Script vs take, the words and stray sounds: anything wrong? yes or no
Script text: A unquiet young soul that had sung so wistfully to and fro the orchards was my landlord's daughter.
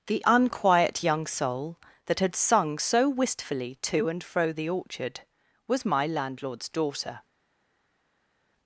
yes